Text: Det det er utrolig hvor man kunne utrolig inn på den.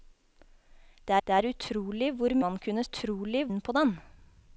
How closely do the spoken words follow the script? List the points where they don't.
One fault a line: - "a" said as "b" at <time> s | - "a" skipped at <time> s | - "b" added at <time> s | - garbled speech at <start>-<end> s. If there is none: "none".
none